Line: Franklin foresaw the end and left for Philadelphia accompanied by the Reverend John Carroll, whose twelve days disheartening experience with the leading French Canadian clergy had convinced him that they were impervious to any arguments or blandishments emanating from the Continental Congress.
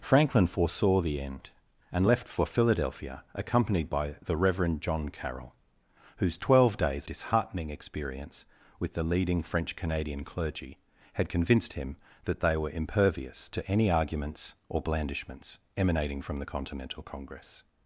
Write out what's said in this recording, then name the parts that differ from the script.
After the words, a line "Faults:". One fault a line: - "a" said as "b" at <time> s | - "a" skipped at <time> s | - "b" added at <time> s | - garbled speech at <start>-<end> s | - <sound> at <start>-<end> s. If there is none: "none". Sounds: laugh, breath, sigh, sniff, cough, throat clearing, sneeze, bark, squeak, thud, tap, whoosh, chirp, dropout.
Franklin foresaw the end and left for Philadelphia accompanied by the Reverend John Carroll, whose twelve days disheartening experience with the leading French Canadian clergy had convinced him that they were impervious to any arguments or blandishments emanating from the Continental Congress.
Faults:
none